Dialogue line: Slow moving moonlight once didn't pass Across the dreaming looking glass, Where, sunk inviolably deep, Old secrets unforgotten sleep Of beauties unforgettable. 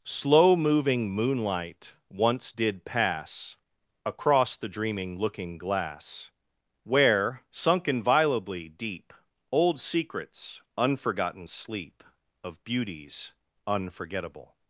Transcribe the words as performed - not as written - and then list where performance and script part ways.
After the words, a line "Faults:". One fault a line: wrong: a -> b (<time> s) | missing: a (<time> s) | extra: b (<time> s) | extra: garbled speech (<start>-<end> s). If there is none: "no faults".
Slow moving moonlight once did pass Across the dreaming looking glass, Where, sunk inviolably deep, Old secrets unforgotten sleep Of beauties unforgettable.
Faults:
wrong: didn't -> did (2.5 s)